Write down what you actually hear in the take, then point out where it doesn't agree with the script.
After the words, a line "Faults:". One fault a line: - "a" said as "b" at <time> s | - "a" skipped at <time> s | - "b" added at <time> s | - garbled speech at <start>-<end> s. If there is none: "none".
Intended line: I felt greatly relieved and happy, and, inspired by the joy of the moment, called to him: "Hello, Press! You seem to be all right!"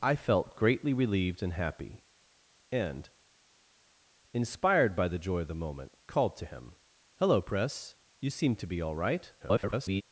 I felt greatly relieved and happy, and, inspired by the joy of the moment, called to him: "Hello, Press! You seem to be all right!" [garbled]
Faults:
- garbled speech at 9.4-10.0 s